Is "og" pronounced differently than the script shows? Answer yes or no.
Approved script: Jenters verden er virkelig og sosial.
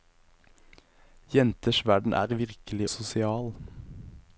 yes